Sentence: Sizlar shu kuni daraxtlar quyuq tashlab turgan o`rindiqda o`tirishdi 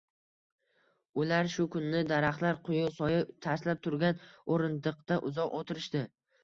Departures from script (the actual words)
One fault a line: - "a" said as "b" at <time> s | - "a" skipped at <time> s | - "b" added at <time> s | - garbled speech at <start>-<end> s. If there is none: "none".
- "Sizlar" said as "Ular" at 1.2 s
- "soya" added at 3.0 s
- "uzoq" added at 5.3 s